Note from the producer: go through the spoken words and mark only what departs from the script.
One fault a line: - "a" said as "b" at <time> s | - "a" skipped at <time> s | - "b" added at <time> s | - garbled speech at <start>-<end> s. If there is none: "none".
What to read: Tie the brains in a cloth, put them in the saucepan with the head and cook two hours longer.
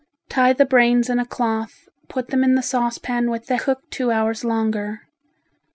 - "head and" skipped at 3.6 s